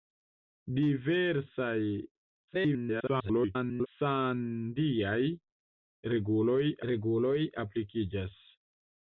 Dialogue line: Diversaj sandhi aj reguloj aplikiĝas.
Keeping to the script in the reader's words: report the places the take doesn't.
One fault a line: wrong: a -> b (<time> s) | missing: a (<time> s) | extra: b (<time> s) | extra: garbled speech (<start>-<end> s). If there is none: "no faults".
extra: garbled speech (2.5-3.9 s)
extra: reguloj (6.9 s)